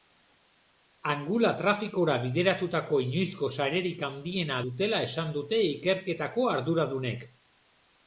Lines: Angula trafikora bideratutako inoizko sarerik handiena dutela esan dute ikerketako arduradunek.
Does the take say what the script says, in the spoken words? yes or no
yes